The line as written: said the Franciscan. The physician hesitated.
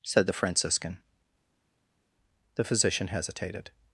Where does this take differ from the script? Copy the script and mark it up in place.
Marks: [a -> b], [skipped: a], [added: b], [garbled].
said the Franciscan. The physician hesitated.